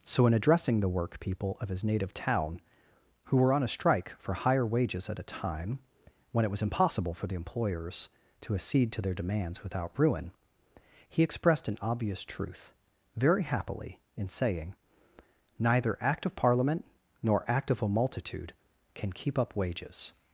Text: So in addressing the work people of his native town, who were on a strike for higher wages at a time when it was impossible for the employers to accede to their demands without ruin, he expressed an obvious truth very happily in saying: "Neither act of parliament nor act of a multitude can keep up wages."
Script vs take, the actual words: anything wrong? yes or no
no